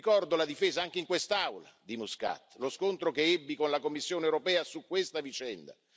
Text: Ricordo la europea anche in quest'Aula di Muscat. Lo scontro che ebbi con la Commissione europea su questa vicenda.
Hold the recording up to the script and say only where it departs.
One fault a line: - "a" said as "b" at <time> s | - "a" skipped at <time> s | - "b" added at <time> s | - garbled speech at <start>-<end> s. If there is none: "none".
- "europea" said as "difesa" at 0.5 s